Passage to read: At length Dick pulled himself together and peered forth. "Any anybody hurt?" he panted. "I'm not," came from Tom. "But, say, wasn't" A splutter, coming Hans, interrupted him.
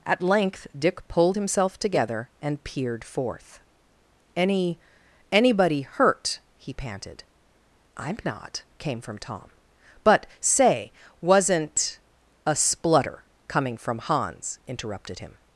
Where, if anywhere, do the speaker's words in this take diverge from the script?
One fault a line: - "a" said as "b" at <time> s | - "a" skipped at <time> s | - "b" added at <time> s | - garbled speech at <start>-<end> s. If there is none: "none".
- "from" added at 13.8 s